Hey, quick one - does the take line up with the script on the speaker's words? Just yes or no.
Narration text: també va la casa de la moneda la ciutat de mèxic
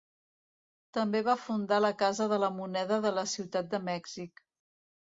no